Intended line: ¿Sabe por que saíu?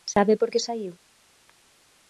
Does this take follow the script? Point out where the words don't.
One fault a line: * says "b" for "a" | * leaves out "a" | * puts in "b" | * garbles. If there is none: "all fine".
all fine